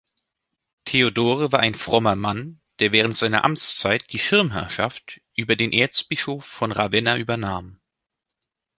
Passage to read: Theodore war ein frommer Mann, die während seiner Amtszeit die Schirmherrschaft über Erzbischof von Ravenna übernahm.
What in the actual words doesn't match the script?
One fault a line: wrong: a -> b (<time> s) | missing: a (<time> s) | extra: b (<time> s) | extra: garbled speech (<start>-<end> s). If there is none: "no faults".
wrong: die -> der (2.8 s)
extra: den (5.5 s)